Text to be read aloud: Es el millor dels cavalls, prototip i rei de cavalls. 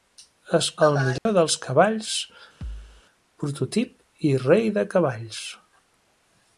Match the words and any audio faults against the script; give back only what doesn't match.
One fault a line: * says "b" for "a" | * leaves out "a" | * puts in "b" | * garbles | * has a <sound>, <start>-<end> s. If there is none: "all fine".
* has a dropout, 1.2-1.3 s
* has a thud, 2.6-3.0 s